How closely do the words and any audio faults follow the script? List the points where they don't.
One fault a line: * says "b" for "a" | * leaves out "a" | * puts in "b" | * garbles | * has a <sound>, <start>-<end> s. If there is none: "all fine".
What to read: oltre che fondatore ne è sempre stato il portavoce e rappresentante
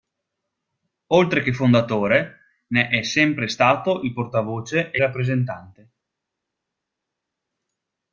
all fine